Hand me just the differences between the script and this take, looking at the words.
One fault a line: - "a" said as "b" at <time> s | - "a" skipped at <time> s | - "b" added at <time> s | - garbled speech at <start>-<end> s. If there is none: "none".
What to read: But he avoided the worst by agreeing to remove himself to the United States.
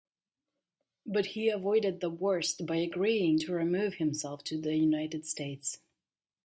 none